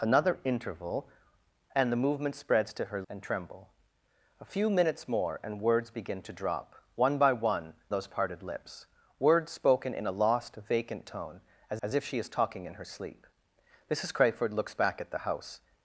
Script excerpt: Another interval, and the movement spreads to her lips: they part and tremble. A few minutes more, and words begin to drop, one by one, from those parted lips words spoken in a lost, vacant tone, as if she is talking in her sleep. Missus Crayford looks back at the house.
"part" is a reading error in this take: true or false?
true